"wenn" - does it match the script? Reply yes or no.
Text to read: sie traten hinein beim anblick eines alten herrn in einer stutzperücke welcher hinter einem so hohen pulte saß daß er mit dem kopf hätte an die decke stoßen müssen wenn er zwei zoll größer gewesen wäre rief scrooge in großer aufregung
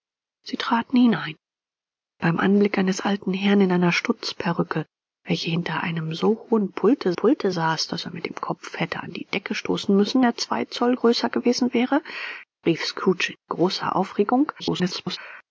no